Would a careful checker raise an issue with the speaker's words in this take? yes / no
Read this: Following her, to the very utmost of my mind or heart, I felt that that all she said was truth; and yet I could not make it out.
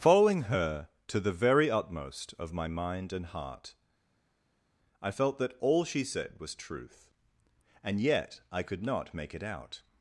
yes